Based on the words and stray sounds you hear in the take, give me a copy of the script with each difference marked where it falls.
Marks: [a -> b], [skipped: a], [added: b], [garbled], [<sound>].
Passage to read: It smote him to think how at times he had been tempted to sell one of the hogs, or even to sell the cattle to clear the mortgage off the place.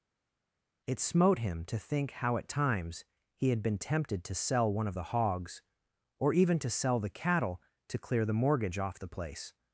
It smote him to think how at times he had been tempted to sell one of the hogs, or even to sell the cattle to clear the mortgage off the place.